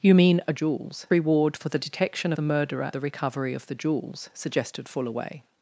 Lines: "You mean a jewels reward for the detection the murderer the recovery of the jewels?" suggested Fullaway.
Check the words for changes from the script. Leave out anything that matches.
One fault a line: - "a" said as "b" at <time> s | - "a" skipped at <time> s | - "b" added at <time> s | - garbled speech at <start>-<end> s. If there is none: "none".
none